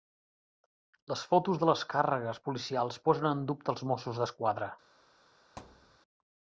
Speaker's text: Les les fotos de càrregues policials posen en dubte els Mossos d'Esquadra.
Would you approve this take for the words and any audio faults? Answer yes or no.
no